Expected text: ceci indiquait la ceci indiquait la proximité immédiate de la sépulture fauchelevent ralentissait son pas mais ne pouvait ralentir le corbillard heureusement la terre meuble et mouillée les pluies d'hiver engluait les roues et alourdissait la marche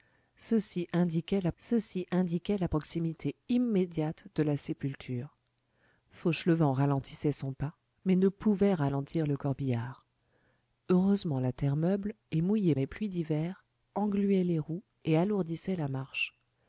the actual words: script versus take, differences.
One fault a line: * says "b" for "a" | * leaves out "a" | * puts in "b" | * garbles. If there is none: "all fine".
all fine